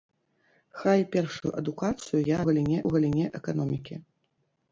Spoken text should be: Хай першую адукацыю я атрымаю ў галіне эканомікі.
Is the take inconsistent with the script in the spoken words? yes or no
yes